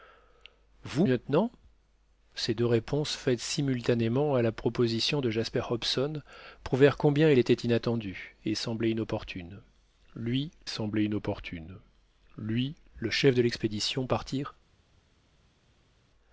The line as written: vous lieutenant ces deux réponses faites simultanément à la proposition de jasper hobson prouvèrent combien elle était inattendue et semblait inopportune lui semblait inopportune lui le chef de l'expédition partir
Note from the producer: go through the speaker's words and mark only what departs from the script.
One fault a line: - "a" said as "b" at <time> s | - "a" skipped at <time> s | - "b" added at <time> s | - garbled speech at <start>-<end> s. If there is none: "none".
none